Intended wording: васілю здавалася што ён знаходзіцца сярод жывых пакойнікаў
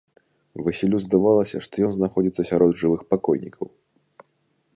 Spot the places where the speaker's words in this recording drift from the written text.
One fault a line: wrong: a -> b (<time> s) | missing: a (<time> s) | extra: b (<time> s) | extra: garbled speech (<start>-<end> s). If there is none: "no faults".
no faults